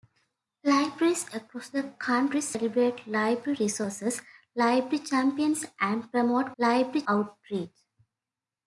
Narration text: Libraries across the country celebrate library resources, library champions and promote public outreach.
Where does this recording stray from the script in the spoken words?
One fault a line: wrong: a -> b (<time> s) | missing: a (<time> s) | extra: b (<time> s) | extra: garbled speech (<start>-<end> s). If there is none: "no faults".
wrong: public -> library (6.6 s)